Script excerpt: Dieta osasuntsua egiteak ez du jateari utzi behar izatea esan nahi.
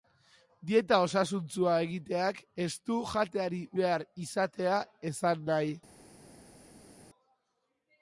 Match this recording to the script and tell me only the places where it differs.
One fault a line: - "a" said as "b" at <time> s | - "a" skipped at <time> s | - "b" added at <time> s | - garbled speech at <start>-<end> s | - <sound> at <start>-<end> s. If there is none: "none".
- "utzi" skipped at 3.6 s